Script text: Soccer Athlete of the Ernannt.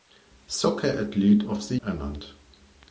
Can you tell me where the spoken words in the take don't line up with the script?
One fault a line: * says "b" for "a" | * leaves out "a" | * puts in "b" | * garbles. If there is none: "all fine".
all fine